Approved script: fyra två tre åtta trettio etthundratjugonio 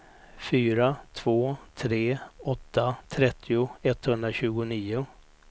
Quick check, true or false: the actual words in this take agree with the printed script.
true